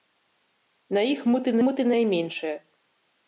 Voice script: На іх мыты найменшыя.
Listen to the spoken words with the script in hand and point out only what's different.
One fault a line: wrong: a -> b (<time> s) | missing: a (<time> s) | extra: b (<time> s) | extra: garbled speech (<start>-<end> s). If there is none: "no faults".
extra: мыты (1.7 s)